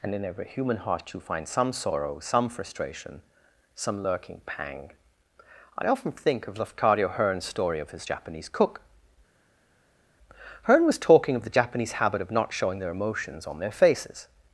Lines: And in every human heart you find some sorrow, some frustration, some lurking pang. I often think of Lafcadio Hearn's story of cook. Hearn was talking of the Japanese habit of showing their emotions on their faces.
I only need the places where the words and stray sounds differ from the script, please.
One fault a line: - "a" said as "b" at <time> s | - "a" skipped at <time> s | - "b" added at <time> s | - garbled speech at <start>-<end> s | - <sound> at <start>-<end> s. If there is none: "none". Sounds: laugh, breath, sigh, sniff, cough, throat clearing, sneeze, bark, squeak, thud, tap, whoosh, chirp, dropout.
- "his Japanese" added at 7.9 s
- "not" added at 12.3 s